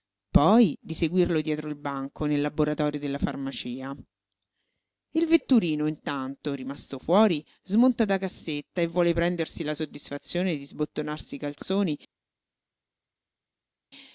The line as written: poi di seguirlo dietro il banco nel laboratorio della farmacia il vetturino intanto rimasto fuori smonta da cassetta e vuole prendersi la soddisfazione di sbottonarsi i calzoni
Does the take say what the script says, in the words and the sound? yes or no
yes